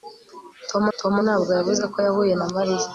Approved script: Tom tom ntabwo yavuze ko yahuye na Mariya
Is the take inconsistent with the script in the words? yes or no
no